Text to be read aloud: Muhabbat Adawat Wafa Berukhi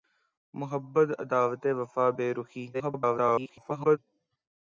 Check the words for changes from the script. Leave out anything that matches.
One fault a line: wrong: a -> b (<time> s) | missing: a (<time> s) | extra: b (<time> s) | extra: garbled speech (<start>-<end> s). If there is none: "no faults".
extra: garbled speech (2.7-4.0 s)